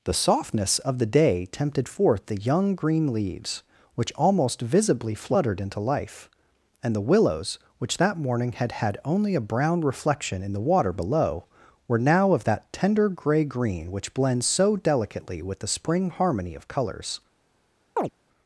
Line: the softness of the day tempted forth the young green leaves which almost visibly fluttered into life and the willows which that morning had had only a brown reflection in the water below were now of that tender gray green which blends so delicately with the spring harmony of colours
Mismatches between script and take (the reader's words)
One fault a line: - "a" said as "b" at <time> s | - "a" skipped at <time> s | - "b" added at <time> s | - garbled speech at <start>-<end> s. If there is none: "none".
none